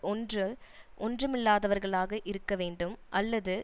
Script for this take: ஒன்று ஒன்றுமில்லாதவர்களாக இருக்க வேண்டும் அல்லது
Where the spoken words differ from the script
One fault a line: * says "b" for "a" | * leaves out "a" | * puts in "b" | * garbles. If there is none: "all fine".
all fine